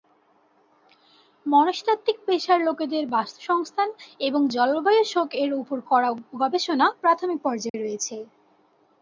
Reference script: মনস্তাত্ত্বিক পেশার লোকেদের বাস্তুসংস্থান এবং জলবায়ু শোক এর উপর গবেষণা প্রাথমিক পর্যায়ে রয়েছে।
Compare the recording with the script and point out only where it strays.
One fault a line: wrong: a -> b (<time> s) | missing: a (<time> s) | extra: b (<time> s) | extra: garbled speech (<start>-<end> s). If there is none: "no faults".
extra: করা (5.9 s)